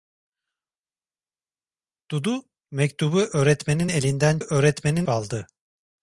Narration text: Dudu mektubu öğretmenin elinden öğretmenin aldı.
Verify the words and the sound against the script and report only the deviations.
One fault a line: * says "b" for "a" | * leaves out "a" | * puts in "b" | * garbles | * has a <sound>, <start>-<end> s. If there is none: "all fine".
all fine